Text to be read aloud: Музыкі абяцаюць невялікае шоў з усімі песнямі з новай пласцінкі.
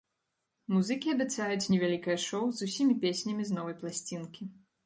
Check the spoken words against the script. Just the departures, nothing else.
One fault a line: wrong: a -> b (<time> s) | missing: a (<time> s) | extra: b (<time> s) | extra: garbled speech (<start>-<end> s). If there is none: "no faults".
no faults